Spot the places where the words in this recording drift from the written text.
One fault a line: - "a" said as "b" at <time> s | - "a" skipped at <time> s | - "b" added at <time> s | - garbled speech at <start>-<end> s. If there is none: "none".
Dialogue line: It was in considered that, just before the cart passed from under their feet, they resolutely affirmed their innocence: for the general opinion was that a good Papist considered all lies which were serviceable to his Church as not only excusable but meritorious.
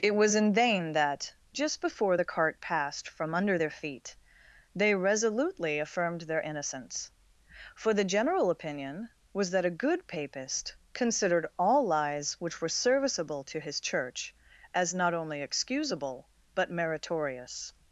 - "considered" said as "vain" at 0.6 s